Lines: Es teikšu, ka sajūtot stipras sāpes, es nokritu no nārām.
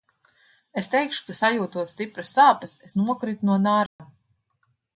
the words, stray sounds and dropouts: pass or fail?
fail